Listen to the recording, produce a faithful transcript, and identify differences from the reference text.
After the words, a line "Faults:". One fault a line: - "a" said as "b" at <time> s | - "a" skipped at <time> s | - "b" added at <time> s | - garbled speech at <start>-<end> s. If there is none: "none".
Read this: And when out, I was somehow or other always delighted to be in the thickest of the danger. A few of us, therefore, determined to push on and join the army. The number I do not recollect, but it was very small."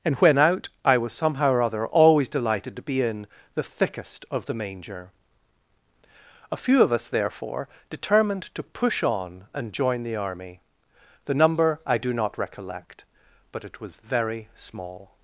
And when out, I was somehow or other always delighted to be in the thickest of the manger. A few of us, therefore, determined to push on and join the army. The number I do not recollect, but it was very small."
Faults:
- "danger" said as "manger" at 4.5 s